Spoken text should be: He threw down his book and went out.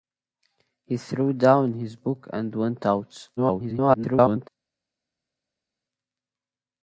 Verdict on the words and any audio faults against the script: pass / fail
fail